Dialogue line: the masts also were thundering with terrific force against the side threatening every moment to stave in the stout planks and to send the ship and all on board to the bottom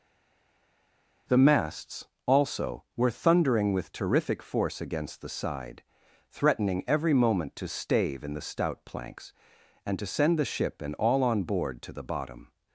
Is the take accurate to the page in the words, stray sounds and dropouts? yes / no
yes